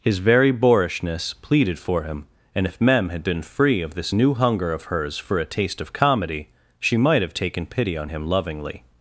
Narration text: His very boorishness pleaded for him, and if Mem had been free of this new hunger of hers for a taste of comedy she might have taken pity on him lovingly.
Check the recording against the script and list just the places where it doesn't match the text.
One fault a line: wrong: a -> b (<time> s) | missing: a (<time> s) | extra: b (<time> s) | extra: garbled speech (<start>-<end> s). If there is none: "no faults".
no faults